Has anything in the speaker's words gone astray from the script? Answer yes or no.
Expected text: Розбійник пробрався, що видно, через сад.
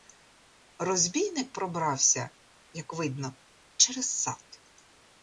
yes